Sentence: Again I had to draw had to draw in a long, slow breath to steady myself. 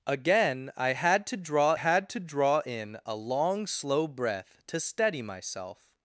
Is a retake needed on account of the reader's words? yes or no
no